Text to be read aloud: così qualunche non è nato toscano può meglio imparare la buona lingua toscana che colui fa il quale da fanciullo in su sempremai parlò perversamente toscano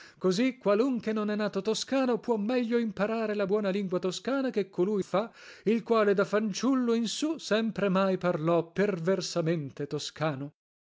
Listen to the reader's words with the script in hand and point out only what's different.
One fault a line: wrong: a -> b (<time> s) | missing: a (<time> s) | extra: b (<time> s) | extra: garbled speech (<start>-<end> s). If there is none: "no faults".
no faults